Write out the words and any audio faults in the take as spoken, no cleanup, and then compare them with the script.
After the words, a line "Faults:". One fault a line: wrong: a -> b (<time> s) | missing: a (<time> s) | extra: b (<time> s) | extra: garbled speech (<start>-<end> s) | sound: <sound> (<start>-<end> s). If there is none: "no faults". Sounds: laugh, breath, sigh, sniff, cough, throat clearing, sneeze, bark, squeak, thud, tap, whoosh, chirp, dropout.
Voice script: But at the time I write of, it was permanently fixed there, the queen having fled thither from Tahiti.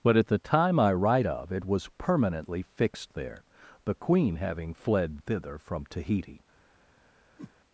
But at the time I write of, it was permanently fixed there, the queen having fled thither from Tahiti.
Faults:
sound: whoosh (7.4-7.5 s)